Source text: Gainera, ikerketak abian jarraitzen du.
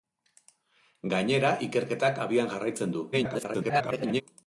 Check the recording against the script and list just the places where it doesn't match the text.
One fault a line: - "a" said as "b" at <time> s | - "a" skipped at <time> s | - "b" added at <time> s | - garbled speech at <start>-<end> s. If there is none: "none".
- garbled speech at 3.1-4.2 s